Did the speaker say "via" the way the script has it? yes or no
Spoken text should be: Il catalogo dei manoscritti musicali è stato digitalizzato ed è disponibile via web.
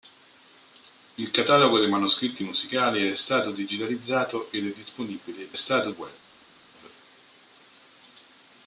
no